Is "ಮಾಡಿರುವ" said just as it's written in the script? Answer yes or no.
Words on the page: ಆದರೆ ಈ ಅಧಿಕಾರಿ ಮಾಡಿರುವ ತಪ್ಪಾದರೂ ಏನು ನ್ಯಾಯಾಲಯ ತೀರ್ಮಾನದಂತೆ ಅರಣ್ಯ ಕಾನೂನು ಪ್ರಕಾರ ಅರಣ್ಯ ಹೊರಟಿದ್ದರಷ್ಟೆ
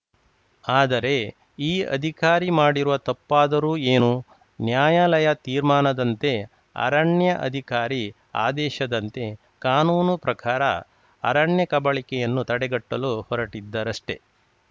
yes